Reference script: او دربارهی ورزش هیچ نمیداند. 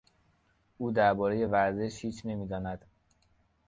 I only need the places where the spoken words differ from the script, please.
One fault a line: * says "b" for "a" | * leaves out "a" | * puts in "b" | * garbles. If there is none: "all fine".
all fine